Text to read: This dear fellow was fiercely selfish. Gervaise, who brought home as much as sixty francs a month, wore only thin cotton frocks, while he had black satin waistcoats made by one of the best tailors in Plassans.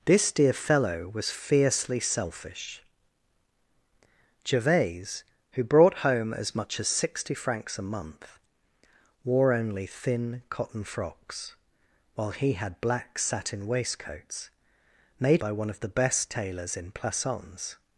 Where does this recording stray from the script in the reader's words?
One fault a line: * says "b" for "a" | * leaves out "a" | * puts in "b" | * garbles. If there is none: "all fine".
all fine